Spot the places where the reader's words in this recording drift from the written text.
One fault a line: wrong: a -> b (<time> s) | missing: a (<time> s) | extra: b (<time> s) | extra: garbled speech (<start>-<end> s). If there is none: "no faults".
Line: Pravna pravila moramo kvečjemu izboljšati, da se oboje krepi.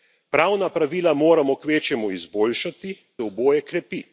missing: da se (3.0 s)